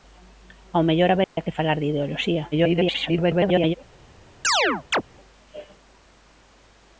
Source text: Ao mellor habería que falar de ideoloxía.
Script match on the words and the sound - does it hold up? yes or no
no